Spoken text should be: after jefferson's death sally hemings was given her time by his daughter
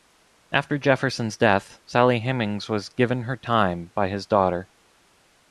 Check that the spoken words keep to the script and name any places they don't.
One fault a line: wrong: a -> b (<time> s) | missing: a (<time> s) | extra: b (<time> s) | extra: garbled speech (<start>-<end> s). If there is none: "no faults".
no faults